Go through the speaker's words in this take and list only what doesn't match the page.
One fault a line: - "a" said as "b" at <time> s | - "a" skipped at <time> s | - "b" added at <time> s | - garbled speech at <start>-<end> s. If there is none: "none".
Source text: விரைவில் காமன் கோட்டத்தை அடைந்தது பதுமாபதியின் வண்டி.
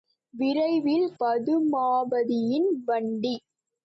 - "காமன் கோட்டத்தை அடைந்தது" skipped at 1.1 s